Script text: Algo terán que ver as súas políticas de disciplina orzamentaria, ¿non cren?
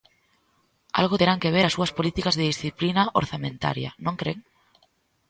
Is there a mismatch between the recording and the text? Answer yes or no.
no